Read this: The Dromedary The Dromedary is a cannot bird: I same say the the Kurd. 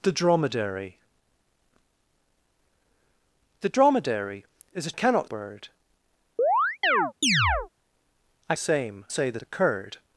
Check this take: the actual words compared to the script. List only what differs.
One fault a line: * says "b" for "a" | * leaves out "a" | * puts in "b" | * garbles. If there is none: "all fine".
all fine